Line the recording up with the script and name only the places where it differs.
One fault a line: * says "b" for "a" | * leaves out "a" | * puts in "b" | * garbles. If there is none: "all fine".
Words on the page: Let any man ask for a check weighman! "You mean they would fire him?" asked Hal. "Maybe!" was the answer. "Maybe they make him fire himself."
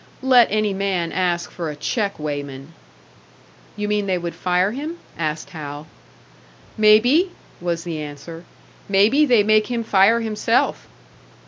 all fine